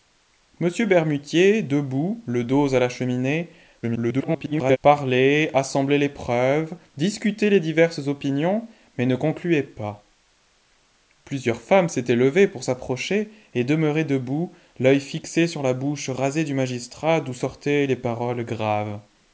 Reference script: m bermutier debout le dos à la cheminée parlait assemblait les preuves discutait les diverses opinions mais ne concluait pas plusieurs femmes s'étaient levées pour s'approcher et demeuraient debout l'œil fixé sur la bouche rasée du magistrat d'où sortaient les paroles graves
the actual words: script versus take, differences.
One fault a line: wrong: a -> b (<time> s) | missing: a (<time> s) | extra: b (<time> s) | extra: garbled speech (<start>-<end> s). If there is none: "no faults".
extra: garbled speech (3.8-4.8 s)